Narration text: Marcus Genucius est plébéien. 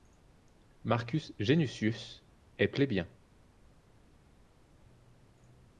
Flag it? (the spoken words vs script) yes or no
no